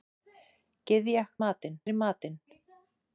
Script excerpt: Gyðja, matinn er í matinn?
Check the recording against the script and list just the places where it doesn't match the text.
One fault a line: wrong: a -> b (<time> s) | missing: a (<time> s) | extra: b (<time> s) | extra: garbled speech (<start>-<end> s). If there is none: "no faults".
no faults